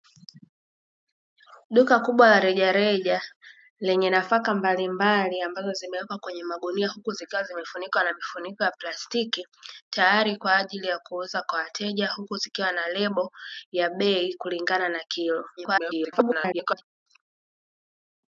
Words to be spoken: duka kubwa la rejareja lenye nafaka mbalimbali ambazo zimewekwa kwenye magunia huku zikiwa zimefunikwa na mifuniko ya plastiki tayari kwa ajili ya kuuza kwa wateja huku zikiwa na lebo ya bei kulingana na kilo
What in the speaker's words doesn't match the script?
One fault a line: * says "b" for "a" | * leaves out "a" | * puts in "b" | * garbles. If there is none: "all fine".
* garbles